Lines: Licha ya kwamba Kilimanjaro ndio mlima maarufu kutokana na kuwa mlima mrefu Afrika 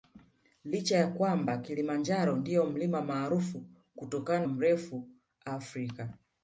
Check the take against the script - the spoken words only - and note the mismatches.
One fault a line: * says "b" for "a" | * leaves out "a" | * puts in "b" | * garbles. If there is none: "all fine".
* leaves out "na kuwa mlima"